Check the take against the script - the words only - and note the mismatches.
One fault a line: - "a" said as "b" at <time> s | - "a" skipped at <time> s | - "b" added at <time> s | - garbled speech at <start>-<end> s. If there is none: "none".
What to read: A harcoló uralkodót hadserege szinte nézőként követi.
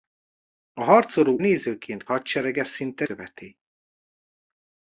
- "uralkodót" said as "nézőként" at 1.4 s
- "nézőként" skipped at 3.0 s